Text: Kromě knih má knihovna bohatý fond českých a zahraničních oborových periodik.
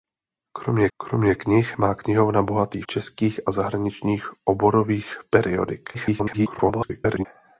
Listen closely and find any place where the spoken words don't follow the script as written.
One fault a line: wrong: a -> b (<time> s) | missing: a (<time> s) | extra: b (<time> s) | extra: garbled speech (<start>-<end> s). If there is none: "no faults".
extra: kromě (1.0 s)
missing: fond (2.8 s)
extra: garbled speech (5.9-7.3 s)